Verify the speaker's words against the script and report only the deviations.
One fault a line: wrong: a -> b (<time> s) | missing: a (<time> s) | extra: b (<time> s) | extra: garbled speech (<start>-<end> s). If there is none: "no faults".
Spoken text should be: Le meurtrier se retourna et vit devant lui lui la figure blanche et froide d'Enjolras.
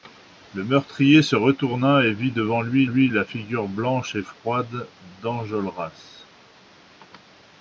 no faults